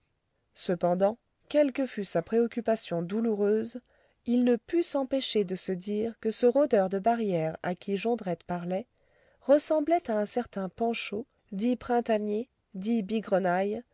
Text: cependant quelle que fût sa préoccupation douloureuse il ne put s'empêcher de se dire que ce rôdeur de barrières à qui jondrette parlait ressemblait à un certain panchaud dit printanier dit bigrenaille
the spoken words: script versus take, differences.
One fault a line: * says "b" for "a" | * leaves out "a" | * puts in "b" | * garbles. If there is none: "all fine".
all fine